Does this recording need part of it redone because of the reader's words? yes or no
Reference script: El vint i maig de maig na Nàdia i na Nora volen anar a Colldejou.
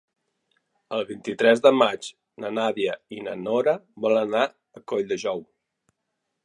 yes